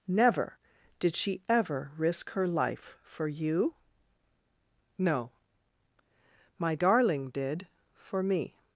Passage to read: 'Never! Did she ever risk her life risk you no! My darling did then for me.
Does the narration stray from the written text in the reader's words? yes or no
yes